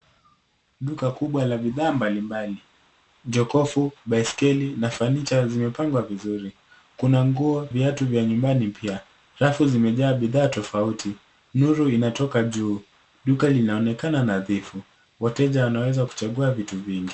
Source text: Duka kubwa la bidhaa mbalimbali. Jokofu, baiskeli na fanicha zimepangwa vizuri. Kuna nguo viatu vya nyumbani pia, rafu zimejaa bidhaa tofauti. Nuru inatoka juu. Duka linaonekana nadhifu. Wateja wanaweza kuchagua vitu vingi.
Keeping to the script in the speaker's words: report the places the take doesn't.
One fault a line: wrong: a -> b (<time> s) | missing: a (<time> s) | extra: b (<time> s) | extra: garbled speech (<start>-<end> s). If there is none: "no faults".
no faults